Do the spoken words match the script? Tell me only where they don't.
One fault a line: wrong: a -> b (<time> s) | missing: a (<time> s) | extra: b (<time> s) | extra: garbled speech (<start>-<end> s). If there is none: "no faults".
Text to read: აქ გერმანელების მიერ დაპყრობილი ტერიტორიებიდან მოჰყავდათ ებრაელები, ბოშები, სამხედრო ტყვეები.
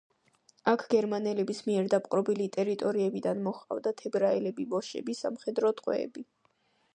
no faults